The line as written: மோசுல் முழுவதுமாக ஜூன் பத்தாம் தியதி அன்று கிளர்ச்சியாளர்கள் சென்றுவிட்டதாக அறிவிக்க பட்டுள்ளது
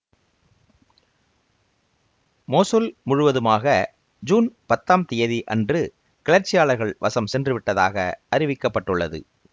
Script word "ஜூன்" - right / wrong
right